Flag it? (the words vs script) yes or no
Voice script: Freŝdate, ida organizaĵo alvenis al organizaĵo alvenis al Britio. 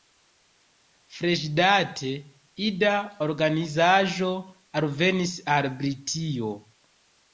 yes